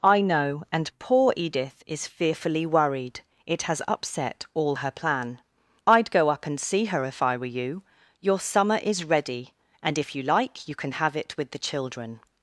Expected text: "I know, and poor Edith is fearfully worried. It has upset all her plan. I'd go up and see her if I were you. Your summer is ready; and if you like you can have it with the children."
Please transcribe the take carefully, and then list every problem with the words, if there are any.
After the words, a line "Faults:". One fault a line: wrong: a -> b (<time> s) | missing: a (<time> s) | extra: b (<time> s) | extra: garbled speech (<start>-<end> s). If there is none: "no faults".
"I know, and poor Edith is fearfully worried. It has upset all her plan. I'd go up and see her if I were you. Your summer is ready; and if you like you can have it with the children."
Faults:
no faults